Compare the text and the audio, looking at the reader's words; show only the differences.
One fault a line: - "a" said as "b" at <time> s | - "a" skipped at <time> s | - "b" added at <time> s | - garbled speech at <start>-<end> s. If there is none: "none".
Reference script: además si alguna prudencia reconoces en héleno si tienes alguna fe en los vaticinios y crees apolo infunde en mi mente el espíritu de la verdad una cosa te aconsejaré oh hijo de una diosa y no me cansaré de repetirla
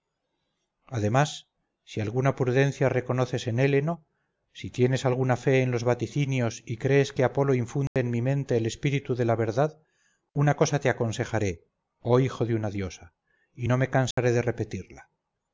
- "que" added at 7.1 s